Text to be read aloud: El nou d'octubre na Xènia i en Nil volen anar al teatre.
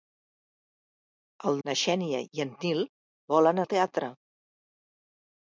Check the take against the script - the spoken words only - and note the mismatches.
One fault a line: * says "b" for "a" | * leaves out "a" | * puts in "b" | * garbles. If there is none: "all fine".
* leaves out "nou d'octubre"
* leaves out "anar"